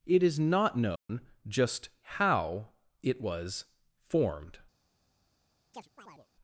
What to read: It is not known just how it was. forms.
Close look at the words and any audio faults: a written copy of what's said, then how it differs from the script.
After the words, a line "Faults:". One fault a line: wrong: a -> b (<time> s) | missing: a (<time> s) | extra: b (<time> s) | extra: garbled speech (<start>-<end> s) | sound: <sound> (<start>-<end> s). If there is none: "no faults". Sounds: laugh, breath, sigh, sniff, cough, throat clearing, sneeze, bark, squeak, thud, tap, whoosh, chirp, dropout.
It is not known just how it was. formed.
Faults:
sound: dropout (1.0-1.1 s)
wrong: forms -> formed (4.0 s)
sound: chirp (5.7-6.3 s)